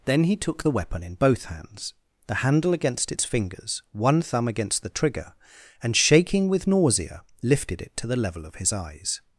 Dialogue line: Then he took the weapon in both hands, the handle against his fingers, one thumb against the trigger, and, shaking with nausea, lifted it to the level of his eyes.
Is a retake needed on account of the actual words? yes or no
yes